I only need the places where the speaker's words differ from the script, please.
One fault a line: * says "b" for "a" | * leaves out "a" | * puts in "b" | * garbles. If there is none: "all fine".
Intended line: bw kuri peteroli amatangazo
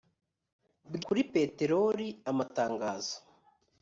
all fine